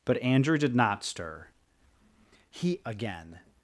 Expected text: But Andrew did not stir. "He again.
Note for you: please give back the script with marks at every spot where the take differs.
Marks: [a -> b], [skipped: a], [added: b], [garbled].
But Andrew did not stir. "He again.